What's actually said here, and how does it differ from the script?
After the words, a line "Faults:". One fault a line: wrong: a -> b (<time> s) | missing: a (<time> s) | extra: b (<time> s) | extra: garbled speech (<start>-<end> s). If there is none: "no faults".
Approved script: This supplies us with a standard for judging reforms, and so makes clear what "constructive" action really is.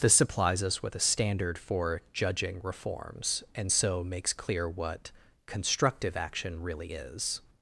This supplies us with a standard for judging reforms, and so makes clear what "constructive" action really is.
Faults:
no faults